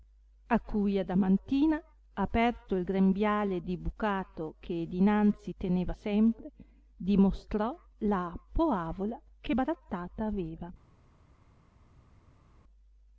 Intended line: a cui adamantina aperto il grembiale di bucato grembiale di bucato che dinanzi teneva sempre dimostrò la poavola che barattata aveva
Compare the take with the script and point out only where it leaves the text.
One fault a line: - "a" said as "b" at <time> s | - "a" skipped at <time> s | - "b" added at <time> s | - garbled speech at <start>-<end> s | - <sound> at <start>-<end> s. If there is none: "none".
- "grembiale di bucato" skipped at 4.5 s